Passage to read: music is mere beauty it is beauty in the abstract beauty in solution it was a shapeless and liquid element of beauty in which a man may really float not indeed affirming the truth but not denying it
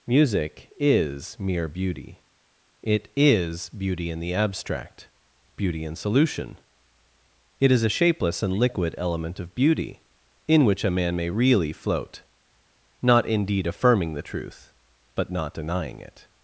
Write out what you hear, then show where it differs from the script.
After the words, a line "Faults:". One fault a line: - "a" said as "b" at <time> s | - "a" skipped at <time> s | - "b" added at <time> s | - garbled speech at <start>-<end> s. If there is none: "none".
music is mere beauty it is beauty in the abstract beauty in solution it is a shapeless and liquid element of beauty in which a man may really float not indeed affirming the truth but not denying it
Faults:
- "was" said as "is" at 7.7 s